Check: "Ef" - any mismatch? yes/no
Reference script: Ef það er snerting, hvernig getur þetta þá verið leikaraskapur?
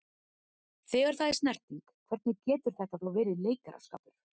yes